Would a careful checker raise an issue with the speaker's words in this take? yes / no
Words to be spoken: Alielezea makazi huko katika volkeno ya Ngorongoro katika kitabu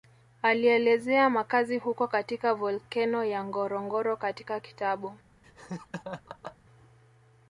no